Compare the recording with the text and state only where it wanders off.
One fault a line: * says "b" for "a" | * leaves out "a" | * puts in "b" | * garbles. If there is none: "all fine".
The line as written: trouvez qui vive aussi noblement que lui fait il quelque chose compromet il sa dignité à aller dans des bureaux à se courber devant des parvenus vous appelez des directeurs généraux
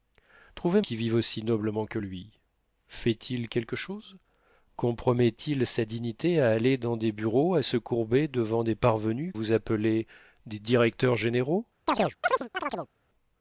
all fine